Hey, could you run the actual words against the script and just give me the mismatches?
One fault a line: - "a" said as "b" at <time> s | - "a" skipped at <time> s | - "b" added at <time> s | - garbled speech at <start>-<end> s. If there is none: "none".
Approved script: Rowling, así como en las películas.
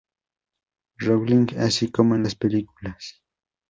none